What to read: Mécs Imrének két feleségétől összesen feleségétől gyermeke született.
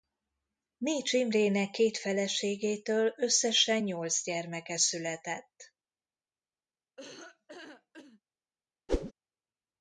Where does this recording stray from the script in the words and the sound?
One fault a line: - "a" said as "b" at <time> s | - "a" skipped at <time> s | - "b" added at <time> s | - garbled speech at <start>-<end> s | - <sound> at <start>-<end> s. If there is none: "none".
- "feleségétől" said as "nyolc" at 3.8 s
- laugh at 7.0-8.2 s
- whoosh at 8.9-9.1 s